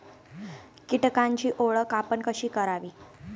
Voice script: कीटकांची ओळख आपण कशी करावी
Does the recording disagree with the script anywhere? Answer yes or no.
no